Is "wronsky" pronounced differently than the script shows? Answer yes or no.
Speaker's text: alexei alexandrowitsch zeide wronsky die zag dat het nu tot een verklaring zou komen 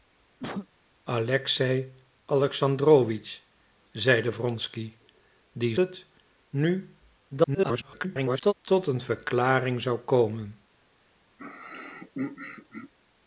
no